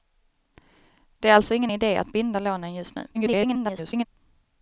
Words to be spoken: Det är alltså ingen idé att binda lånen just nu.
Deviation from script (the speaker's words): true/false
true